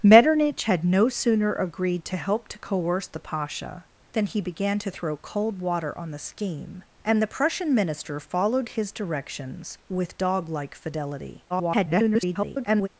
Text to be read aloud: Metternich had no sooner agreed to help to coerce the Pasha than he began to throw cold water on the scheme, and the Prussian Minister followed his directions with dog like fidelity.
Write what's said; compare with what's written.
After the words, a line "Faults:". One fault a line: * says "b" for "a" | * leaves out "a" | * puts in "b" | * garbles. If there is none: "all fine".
Metternich had no sooner agreed to help to coerce the Pasha than he began to throw cold water on the scheme, and the Prussian Minister followed his directions with dog like fidelity. [garbled]
Faults:
* garbles